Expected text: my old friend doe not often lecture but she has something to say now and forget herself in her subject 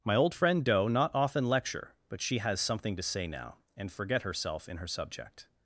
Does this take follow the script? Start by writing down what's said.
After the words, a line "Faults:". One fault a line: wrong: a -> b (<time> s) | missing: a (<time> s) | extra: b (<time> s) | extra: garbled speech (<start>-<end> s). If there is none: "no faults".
my old friend doe not often lecture but she has something to say now and forget herself in her subject
Faults:
no faults